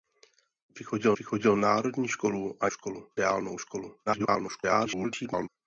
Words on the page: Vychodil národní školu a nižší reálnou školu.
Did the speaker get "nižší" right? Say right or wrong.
wrong